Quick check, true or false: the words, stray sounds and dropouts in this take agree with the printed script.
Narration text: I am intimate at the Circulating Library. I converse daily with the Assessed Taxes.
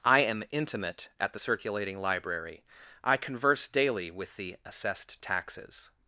true